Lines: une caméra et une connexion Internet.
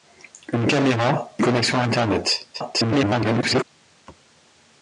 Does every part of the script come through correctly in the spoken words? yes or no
no